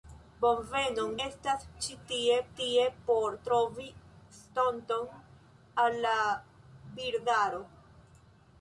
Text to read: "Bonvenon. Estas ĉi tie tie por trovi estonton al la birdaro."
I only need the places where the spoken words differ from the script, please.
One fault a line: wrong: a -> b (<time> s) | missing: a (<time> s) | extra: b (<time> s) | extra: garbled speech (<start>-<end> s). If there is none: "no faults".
no faults